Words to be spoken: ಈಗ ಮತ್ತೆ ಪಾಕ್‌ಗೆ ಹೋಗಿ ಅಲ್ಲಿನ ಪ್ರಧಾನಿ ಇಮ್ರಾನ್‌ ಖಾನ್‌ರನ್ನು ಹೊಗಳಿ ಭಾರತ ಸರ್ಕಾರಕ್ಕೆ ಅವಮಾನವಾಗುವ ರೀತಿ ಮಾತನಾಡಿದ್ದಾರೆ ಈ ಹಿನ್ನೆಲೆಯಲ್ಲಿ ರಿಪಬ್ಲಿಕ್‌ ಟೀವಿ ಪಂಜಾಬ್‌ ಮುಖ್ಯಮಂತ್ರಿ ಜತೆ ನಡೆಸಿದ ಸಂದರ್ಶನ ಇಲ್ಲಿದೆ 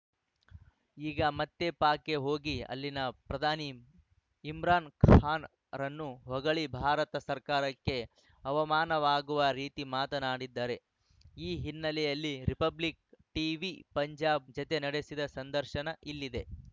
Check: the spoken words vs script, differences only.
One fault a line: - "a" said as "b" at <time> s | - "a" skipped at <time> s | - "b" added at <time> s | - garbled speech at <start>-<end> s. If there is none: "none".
- "ಮುಖ್ಯಮಂತ್ರಿ" skipped at 14.5 s